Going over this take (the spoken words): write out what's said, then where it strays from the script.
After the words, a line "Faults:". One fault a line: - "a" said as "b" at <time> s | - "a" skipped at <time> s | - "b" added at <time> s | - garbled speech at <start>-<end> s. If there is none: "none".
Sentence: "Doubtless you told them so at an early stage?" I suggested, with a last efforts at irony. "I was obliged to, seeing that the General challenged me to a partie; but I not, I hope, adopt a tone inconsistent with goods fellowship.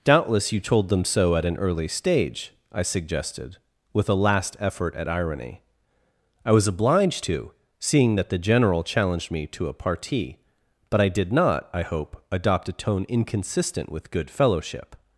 "Doubtless you told them so at an early stage?" I suggested, with a last effort at irony. "I was obliged to, seeing that the General challenged me to a partie; but I did not, I hope, adopt a tone inconsistent with good fellowship.
Faults:
- "efforts" said as "effort" at 4.6 s
- "did" added at 11.1 s
- "goods" said as "good" at 14.1 s